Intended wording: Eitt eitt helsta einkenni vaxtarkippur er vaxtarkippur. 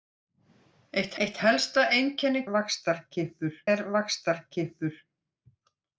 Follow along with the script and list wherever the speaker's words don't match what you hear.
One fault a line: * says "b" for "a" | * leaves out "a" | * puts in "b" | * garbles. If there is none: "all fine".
all fine